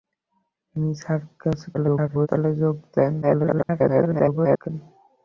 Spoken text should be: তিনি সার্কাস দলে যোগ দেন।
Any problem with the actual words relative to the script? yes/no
yes